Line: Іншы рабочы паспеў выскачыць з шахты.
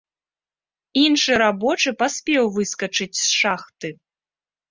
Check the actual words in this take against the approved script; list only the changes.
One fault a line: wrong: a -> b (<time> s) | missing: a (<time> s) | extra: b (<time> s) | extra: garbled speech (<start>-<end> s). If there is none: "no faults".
no faults